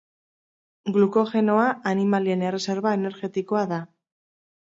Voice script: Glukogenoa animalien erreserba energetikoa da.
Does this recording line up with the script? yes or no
yes